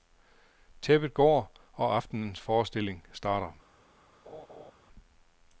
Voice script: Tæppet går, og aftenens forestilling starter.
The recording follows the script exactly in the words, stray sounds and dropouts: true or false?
false